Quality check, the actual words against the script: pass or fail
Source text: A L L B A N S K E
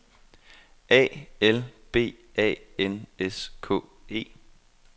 fail